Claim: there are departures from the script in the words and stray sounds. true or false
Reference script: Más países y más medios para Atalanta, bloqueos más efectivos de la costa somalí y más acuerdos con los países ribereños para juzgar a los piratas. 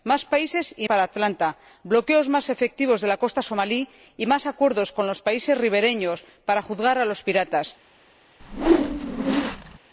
true